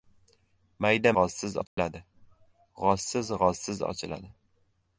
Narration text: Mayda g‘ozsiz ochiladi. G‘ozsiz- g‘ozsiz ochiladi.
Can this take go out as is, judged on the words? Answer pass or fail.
pass